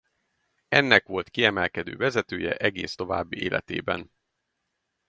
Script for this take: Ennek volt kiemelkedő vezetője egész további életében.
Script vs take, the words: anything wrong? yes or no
no